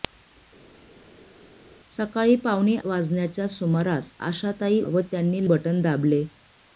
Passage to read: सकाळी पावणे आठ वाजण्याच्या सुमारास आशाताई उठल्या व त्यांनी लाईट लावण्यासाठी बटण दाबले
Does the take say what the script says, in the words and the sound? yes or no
no